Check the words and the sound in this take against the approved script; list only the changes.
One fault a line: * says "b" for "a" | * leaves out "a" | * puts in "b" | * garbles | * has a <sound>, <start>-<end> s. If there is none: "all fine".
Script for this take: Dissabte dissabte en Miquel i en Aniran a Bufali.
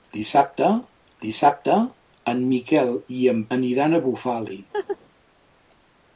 * has a laugh, 4.7-5.0 s